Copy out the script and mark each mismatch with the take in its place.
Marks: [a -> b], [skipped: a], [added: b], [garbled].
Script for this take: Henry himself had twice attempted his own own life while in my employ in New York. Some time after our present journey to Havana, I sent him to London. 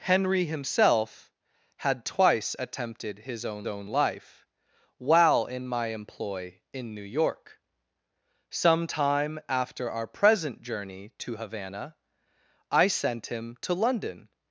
Henry himself had twice attempted his own own life while in my employ in New York. Some time after our present journey to Havana, I sent him to London.